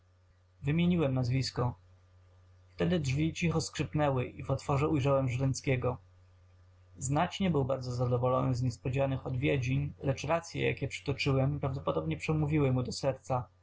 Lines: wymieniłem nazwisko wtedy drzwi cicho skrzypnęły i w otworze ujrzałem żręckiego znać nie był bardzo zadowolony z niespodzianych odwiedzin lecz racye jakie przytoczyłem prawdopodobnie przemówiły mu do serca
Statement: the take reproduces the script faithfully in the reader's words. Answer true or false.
true